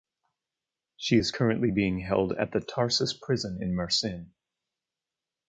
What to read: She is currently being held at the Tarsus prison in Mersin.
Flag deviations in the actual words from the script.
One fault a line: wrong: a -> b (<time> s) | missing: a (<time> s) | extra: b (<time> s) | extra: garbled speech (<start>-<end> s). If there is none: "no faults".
no faults